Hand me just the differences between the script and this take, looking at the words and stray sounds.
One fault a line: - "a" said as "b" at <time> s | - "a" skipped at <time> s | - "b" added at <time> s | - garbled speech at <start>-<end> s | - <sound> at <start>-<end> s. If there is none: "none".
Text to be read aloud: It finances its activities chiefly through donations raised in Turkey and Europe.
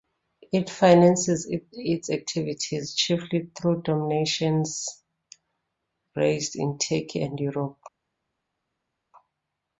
none